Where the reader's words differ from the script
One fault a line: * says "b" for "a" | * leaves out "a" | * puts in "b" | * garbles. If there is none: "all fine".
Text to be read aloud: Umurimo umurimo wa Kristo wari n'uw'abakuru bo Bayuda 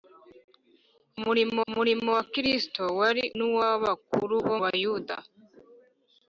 all fine